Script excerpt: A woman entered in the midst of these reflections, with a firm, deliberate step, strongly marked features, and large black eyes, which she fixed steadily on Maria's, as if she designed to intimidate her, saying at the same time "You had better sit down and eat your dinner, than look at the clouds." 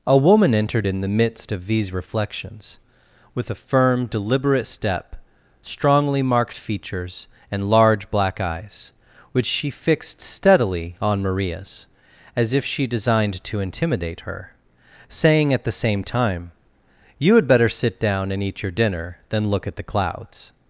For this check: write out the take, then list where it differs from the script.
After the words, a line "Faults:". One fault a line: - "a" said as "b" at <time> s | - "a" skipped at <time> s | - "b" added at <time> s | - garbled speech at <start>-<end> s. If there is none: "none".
A woman entered in the midst of these reflections, with a firm, deliberate step, strongly marked features, and large black eyes, which she fixed steadily on Maria's, as if she designed to intimidate her, saying at the same time "You had better sit down and eat your dinner, than look at the clouds."
Faults:
none